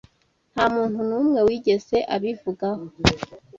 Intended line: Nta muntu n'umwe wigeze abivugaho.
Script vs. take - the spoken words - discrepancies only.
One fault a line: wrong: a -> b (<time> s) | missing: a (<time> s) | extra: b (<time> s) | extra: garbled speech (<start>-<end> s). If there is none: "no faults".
no faults